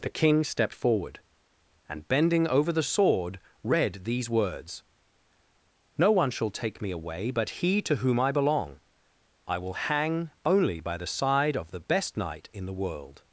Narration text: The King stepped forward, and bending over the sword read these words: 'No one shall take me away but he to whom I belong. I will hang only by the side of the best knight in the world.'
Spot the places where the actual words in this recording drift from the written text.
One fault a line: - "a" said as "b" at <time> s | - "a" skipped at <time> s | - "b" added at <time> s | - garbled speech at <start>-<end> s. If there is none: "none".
none